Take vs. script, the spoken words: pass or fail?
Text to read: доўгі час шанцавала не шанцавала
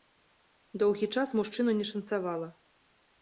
fail